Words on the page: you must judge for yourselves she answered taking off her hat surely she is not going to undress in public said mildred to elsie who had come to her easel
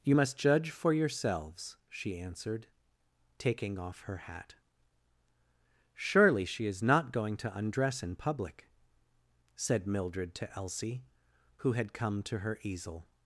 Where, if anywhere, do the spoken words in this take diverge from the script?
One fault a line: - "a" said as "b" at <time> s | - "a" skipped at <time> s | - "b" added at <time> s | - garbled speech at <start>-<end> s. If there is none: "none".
none